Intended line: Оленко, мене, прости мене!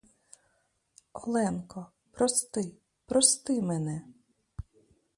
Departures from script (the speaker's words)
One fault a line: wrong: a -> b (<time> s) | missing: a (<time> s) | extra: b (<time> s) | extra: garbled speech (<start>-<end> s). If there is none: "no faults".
wrong: мене -> прости (2.1 s)